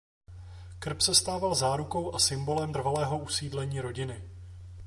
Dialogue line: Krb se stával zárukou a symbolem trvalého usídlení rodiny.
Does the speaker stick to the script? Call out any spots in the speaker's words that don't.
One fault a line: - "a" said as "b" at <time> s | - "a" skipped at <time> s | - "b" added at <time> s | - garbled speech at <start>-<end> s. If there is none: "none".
none